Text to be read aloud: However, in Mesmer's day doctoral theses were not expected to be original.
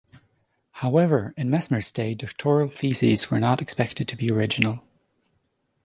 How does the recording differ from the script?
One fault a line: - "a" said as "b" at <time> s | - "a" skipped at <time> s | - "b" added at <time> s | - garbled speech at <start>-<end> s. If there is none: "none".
none